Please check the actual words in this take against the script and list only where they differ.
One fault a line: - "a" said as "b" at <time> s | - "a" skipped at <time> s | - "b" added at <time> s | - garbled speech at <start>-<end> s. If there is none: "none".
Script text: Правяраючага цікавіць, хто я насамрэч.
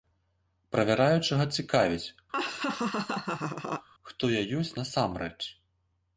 - "ёсць" added at 4.6 s